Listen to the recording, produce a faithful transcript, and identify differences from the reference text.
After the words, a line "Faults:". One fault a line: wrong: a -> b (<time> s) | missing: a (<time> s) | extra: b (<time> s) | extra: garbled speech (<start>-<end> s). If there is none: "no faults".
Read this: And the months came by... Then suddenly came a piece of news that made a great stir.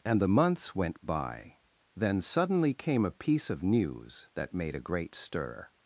And the months went by... Then suddenly came a piece of news that made a great stir.
Faults:
wrong: came -> went (0.7 s)